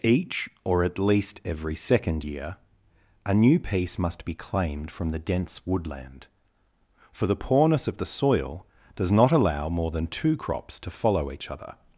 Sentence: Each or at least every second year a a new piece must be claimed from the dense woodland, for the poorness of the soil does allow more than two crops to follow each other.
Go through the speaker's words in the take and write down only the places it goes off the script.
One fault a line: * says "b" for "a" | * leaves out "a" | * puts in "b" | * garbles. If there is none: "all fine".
* leaves out "a"
* puts in "not"